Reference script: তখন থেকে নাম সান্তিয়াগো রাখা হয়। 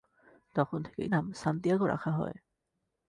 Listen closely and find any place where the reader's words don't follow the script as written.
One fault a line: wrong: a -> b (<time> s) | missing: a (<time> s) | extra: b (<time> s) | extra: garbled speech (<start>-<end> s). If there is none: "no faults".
no faults